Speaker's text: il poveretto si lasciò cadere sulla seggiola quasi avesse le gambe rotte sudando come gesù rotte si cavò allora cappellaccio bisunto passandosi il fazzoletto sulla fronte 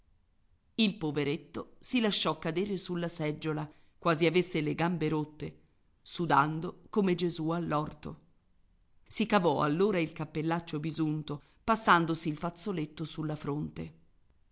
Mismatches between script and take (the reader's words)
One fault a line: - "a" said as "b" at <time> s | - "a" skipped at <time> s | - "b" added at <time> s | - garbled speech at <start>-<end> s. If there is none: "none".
- "rotte" said as "all'orto" at 7.5 s
- "il" added at 10.0 s